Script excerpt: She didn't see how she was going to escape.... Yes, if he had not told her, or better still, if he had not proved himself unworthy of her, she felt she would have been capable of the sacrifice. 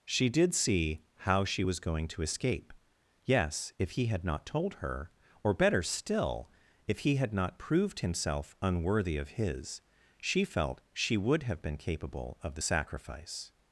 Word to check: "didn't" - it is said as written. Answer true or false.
false